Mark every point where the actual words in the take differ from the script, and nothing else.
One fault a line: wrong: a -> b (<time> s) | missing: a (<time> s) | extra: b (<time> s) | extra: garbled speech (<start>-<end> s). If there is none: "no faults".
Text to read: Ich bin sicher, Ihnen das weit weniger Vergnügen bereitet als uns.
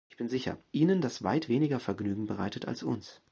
no faults